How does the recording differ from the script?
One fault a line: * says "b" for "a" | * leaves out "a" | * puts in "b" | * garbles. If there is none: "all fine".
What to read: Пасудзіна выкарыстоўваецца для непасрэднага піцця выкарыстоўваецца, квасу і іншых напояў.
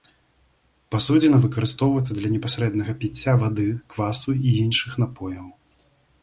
* says "вады" for "выкарыстоўваецца"